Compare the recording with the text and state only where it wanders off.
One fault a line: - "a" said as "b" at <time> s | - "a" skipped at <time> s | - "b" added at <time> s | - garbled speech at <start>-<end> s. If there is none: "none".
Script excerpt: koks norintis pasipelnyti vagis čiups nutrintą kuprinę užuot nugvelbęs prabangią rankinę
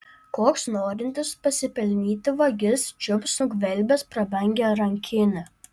- "nutrintą kuprinę užuot" skipped at 3.3 s